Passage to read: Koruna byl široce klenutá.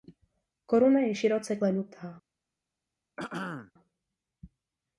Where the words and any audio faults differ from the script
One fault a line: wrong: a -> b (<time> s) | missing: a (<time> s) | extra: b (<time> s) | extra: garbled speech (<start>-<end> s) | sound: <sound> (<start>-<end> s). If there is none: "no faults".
wrong: byl -> je (1.0 s)
sound: throat clearing (3.2-3.7 s)